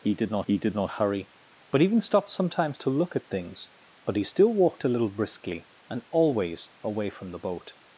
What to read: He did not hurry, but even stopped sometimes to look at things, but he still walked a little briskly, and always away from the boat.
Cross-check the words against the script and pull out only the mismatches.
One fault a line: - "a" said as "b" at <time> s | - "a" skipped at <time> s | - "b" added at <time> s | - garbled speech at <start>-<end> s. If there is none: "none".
- "he did not" added at 0.4 s